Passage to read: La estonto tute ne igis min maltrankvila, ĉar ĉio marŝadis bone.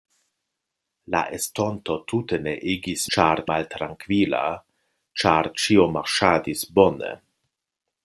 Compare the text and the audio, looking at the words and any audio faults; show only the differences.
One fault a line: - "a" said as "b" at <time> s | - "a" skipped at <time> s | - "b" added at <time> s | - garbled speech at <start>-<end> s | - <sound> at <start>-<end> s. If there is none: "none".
- "min" said as "ĉar" at 3.2 s